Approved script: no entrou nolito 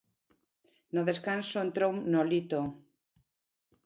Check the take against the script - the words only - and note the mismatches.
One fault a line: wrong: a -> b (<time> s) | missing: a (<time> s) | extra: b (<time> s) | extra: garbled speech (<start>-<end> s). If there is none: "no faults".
extra: descanso (1.1 s)